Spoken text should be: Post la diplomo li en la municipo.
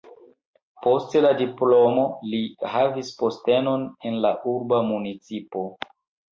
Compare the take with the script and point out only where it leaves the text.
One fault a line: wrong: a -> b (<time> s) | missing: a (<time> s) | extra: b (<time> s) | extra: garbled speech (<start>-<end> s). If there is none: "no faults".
extra: havis postenon (2.8 s)
extra: urba (4.6 s)